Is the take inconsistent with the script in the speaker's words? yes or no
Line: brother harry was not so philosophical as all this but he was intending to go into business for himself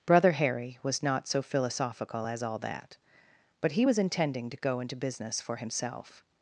yes